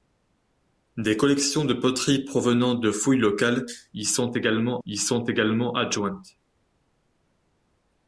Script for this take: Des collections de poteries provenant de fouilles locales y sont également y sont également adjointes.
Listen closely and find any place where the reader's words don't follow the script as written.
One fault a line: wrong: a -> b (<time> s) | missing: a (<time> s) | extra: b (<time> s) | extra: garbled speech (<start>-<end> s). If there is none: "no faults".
no faults